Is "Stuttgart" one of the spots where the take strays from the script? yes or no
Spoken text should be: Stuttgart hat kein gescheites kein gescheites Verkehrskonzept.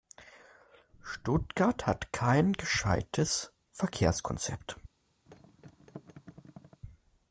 no